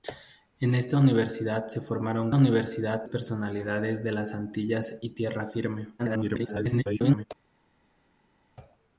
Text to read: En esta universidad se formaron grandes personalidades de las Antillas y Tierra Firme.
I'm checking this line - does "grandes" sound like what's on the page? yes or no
no